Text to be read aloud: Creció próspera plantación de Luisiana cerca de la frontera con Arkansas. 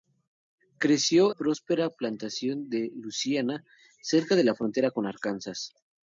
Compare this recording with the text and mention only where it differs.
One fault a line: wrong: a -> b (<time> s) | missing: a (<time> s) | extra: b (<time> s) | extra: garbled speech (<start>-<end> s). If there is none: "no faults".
no faults